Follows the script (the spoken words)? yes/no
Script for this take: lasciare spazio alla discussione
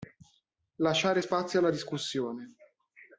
yes